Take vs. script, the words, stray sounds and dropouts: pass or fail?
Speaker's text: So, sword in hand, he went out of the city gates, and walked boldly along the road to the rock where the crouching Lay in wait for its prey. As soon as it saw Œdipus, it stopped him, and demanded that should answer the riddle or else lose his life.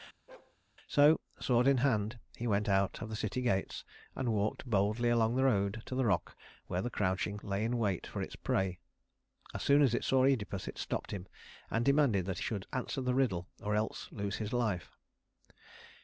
fail